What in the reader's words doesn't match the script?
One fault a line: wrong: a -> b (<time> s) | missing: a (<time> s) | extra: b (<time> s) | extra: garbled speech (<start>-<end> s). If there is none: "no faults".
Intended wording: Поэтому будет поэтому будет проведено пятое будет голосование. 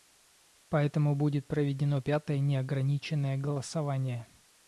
missing: поэтому будет (1.5 s)
wrong: будет -> неограниченное (2.4 s)